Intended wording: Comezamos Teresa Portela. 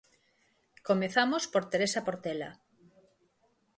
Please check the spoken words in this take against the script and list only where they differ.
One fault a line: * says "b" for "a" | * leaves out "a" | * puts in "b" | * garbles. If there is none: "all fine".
* puts in "por"